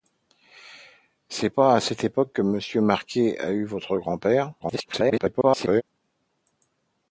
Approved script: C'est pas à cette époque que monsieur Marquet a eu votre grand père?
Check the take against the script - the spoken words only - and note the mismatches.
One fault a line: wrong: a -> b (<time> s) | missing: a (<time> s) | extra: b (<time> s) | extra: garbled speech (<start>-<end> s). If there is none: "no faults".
extra: garbled speech (4.6-5.8 s)